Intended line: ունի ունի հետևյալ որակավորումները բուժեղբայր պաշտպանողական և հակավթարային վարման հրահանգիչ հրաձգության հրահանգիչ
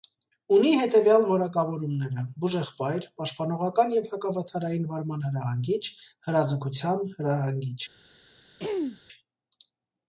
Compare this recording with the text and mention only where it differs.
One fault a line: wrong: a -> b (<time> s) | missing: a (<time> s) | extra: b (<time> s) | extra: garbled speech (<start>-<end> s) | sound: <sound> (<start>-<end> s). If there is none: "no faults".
missing: ունի (0.7 s)
sound: throat clearing (8.6-9.0 s)